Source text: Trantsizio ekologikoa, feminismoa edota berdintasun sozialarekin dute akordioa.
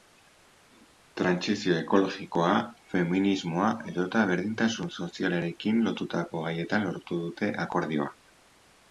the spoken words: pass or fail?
fail